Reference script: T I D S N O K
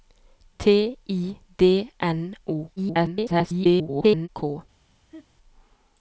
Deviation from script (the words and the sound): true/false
true